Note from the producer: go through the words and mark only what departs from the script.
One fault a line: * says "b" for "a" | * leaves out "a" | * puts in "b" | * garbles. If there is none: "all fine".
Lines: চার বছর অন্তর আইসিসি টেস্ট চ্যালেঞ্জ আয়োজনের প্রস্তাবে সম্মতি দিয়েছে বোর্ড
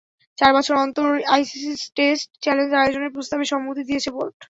all fine